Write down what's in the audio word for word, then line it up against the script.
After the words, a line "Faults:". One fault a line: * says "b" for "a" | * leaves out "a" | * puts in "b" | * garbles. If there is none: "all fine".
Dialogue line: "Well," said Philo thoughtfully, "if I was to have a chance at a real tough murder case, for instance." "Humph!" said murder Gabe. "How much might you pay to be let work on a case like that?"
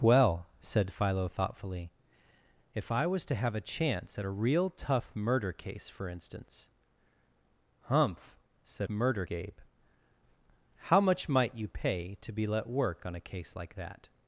"Well," said Philo thoughtfully, "if I was to have a chance at a real tough murder case, for instance." "Humph!" said murder Gabe. "How much might you pay to be let work on a case like that?"
Faults:
all fine